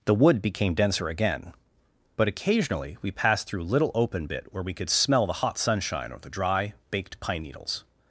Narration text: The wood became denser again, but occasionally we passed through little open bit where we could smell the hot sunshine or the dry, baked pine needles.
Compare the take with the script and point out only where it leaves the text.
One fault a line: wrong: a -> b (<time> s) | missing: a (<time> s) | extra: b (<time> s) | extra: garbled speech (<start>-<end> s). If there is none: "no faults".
no faults